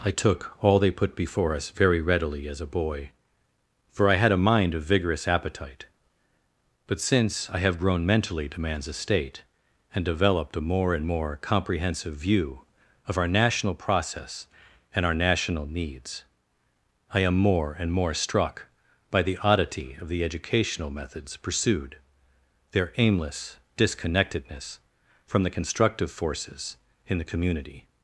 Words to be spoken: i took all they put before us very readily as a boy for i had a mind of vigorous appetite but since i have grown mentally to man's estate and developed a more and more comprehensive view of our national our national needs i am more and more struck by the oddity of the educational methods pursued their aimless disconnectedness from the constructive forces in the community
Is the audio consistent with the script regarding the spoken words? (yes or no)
no